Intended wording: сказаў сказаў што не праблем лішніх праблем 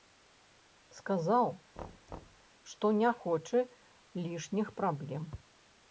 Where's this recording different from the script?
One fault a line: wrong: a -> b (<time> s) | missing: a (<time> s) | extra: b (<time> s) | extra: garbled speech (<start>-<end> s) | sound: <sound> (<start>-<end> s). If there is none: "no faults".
missing: сказаў (1.4 s)
sound: thud (1.8-2.5 s)
wrong: праблем -> хоча (3.2 s)